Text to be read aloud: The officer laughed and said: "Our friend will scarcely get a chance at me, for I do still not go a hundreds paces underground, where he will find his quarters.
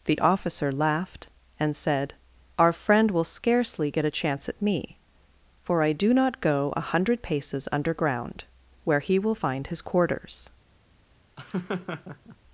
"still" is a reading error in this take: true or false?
true